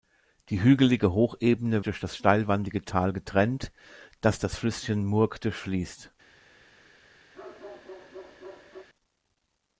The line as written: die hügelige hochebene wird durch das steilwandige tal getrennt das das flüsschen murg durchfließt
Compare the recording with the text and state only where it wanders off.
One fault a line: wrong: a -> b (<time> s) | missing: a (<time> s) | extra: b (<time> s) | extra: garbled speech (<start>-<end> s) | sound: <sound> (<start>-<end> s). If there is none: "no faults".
missing: wird (1.9 s)
sound: bark (7.3-8.9 s)